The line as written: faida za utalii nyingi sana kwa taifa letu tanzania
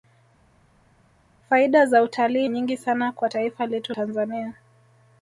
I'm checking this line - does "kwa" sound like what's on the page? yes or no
yes